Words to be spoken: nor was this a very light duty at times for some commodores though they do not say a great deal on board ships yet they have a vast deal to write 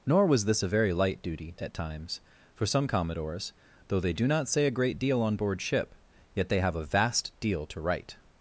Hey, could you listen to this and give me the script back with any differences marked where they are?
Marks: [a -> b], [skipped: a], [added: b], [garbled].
nor was this a very light duty at times for some commodores though they do not say a great deal on board [ships -> ship] yet they have a vast deal to write